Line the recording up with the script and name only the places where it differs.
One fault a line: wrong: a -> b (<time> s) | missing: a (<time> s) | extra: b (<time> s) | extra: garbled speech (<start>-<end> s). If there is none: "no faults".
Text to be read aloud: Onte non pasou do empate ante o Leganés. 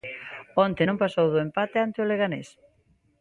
no faults